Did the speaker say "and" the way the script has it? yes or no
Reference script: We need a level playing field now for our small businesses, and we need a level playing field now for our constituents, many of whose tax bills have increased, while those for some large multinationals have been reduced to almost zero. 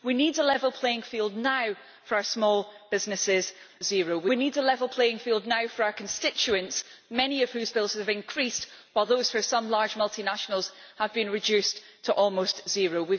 no